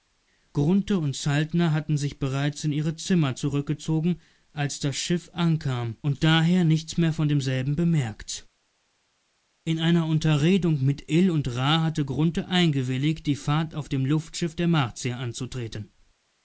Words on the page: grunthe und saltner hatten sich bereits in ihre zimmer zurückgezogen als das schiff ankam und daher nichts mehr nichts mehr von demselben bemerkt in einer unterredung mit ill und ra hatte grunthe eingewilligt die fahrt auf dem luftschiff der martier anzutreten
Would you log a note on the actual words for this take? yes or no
yes